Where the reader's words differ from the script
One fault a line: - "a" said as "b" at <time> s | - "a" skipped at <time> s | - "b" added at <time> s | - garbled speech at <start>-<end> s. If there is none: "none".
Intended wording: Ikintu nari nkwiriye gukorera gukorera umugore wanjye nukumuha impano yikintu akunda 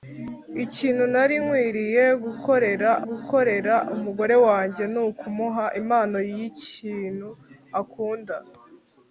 none